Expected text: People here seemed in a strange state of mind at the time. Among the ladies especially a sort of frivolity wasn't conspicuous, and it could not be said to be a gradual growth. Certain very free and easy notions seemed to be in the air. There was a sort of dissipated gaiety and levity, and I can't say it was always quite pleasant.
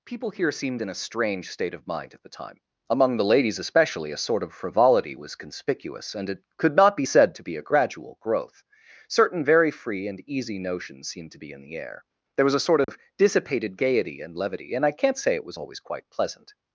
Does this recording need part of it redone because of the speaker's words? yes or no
yes